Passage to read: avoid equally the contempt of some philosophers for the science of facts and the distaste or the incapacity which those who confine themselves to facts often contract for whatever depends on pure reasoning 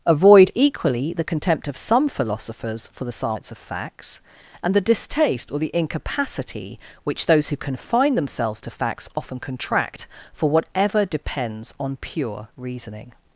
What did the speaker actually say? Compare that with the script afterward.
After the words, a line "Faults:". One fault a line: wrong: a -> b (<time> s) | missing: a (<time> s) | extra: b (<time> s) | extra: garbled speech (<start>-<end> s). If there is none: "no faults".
avoid equally the contempt of some philosophers for the science of facts and the distaste or the incapacity which those who confine themselves to facts often contract for whatever depends on pure reasoning
Faults:
no faults